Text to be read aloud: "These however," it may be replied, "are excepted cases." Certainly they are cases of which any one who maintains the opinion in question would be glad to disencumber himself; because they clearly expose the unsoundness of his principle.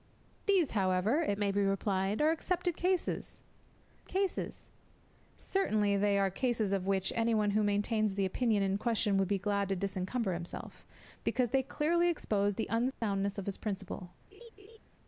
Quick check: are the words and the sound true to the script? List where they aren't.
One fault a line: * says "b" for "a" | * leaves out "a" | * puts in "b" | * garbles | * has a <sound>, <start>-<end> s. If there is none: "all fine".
* puts in "cases"
* has a dropout, 12.9-13.0 s
* has a laugh, 14.3-14.8 s